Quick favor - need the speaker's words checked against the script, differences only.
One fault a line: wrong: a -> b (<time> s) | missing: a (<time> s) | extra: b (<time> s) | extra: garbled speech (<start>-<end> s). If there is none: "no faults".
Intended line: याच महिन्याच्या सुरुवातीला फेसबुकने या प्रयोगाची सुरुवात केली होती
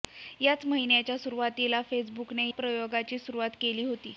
missing: या (2.5 s)